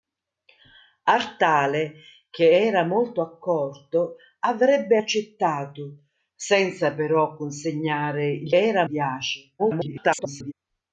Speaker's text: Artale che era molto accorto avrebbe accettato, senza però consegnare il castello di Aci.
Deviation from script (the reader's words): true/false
true